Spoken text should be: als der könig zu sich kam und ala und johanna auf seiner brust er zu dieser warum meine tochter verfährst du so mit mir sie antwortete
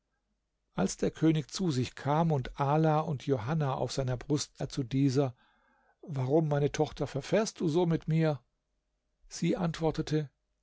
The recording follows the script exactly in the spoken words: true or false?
true